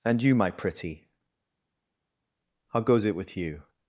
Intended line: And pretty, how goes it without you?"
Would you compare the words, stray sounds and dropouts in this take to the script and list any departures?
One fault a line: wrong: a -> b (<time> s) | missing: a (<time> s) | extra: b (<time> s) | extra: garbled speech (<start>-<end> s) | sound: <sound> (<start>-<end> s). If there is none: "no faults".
extra: you my (0.2 s)
wrong: without -> with (3.2 s)